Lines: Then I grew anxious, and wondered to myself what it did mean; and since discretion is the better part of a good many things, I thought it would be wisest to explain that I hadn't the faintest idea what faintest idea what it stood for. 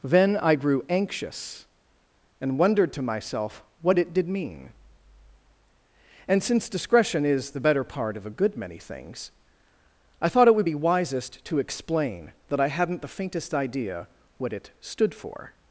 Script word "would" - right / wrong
right